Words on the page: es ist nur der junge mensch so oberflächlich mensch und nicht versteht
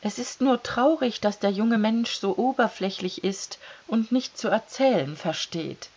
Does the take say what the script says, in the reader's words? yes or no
no